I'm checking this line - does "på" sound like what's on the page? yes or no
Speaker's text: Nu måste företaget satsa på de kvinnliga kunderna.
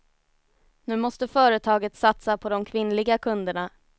yes